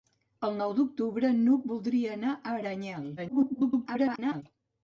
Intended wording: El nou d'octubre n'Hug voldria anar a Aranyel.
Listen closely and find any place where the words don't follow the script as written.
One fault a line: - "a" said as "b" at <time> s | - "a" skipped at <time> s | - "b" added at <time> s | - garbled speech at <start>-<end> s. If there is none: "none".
- garbled speech at 3.2-4.4 s